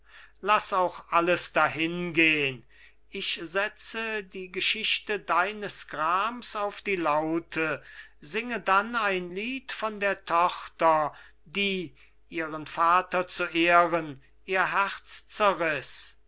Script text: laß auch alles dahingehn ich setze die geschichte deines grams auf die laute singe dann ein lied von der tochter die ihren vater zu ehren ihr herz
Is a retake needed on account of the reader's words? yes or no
no